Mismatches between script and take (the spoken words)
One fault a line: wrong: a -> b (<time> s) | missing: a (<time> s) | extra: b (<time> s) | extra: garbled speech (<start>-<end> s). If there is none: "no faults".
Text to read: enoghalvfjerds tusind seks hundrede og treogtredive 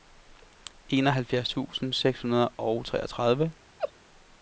no faults